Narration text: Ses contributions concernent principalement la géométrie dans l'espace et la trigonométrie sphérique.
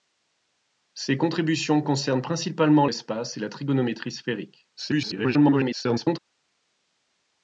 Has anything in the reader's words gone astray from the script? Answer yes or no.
yes